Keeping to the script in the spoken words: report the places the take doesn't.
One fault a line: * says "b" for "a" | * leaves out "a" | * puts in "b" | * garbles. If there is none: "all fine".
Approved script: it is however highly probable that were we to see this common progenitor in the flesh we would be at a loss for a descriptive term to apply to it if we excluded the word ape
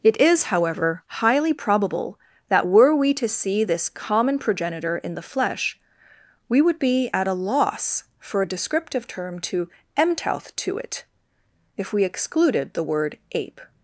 * says "mtouth" for "apply"